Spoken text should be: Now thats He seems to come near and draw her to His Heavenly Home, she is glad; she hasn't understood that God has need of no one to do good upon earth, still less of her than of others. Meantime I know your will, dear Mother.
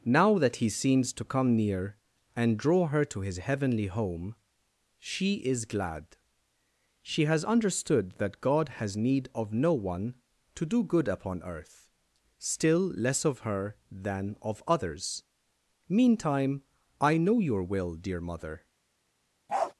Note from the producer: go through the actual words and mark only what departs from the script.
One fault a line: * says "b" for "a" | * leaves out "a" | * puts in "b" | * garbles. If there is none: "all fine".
* says "that" for "thats"
* says "has" for "hasn't"